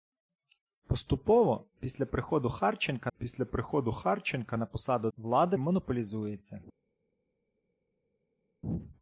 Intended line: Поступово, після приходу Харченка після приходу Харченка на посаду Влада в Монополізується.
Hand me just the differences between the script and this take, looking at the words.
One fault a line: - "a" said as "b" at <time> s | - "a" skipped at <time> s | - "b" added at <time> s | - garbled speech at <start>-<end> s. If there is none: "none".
none